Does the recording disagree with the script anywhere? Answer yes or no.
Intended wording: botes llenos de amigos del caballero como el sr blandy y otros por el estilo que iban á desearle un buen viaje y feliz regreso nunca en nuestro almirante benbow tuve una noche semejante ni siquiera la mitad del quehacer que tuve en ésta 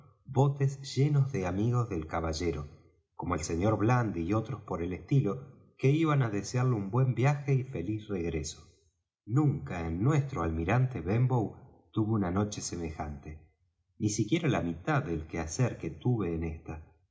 no